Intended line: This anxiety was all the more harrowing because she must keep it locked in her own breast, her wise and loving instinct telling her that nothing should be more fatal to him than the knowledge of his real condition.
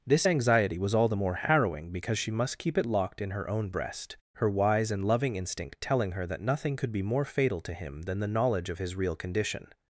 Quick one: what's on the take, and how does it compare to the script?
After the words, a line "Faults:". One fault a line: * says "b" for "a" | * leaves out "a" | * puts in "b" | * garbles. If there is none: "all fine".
This anxiety was all the more harrowing because she must keep it locked in her own breast, her wise and loving instinct telling her that nothing could be more fatal to him than the knowledge of his real condition.
Faults:
* says "could" for "should"